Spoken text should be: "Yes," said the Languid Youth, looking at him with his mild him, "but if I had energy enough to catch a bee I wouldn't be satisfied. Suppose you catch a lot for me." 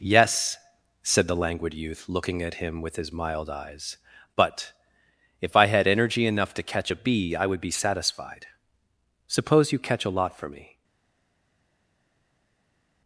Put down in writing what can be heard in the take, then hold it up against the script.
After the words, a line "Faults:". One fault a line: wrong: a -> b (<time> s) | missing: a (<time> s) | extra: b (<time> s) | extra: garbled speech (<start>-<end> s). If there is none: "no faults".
"Yes," said the Languid Youth, looking at him with his mild eyes, "but if I had energy enough to catch a bee I would be satisfied. Suppose you catch a lot for me."
Faults:
wrong: him -> eyes (3.5 s)
wrong: wouldn't -> would (7.5 s)